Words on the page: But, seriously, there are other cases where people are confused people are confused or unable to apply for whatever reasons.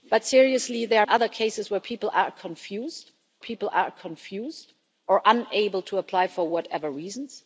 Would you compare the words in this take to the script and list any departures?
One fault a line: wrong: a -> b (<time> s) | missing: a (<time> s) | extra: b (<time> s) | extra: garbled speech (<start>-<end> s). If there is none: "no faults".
no faults